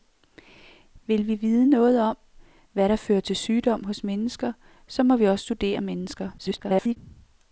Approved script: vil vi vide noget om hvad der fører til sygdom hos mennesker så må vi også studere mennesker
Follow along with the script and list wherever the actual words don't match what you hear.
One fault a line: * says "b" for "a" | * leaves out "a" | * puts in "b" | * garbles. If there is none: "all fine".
* garbles